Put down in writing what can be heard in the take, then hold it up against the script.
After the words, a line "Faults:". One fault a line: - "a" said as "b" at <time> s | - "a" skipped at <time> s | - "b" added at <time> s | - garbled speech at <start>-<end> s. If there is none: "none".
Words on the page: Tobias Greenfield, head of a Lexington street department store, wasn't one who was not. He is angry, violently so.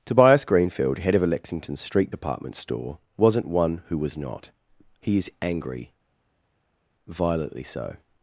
Tobias Greenfield, head of a Lexington street department store, wasn't one who was not. He is angry, violently so.
Faults:
none